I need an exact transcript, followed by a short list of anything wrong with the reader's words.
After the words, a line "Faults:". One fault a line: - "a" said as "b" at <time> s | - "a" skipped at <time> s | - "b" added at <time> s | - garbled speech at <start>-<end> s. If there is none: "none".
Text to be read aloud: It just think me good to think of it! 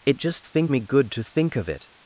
It just think me good to think of it!
Faults:
none